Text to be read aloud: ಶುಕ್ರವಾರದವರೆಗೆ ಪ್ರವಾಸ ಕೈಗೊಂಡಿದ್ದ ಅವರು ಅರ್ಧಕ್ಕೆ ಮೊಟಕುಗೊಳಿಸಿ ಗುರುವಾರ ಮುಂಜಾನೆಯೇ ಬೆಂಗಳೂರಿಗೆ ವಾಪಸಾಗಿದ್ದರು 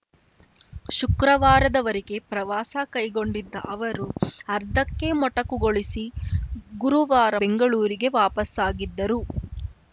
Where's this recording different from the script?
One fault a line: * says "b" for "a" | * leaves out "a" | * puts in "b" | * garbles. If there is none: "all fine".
* leaves out "ಮುಂಜಾನೆಯೇ"